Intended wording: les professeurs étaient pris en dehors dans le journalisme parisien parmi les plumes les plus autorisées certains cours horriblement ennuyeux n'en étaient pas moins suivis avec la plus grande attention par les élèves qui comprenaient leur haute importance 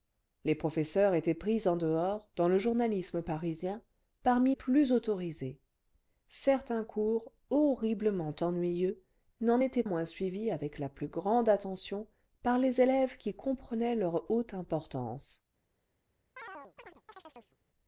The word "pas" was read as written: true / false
false